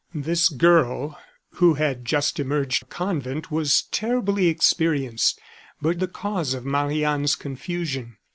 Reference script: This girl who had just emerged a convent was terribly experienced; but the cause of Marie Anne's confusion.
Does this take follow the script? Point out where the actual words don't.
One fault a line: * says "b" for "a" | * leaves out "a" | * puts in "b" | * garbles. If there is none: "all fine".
all fine